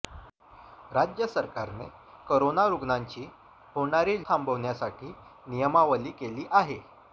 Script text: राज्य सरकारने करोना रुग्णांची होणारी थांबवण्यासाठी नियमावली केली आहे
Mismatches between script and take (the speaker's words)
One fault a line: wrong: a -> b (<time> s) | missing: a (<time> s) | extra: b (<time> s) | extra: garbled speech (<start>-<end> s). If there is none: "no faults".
no faults